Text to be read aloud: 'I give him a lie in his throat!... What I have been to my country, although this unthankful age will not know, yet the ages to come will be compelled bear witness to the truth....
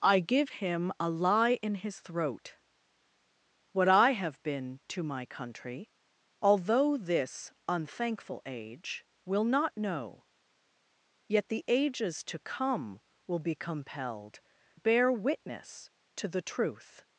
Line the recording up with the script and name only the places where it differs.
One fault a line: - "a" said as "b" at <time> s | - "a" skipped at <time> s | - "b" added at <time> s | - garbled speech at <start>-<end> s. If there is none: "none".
none